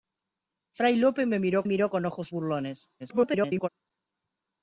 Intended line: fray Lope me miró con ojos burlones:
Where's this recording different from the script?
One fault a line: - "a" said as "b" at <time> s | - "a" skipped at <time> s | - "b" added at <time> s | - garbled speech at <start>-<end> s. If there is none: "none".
- "miró" added at 1.7 s
- garbled speech at 3.0-3.7 s